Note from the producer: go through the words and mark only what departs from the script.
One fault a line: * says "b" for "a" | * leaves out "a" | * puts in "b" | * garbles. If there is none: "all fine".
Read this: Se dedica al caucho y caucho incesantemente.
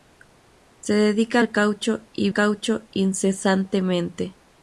all fine